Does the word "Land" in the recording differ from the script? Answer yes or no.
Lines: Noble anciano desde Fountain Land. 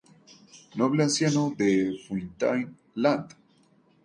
no